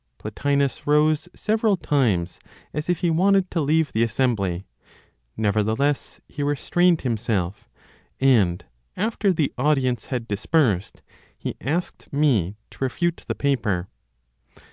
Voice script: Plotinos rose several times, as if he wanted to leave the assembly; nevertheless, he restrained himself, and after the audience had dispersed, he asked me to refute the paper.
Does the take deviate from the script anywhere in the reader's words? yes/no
no